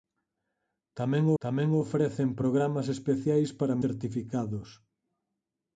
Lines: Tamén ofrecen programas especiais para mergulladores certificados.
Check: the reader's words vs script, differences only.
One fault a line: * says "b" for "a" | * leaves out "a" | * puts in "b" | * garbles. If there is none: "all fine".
* puts in "tamén"
* leaves out "mergulladores"